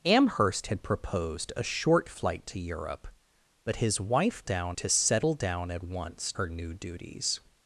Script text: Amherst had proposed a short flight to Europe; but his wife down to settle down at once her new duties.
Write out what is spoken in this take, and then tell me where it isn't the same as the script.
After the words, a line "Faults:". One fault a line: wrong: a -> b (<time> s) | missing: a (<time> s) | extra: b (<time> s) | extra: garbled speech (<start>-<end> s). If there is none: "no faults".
Amherst had proposed a short flight to Europe; but his wife down to settle down at once her new duties.
Faults:
no faults